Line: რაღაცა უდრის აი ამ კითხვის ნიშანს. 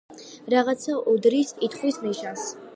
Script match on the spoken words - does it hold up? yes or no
no